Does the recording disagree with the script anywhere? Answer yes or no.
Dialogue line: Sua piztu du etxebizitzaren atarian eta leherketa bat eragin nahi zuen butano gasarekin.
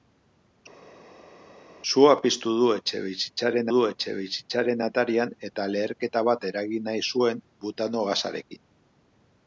yes